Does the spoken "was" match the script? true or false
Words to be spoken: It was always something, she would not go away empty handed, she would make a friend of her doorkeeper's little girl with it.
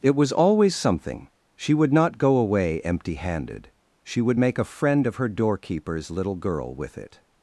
true